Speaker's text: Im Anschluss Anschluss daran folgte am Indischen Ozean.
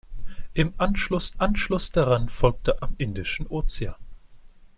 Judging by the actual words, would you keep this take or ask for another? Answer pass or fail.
pass